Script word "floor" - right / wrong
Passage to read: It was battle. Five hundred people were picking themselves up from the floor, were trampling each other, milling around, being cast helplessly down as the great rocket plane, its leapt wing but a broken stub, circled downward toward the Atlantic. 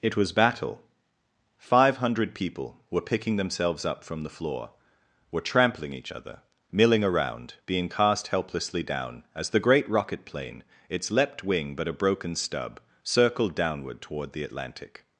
right